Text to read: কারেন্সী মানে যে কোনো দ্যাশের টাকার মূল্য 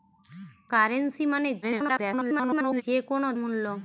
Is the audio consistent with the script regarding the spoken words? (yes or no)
no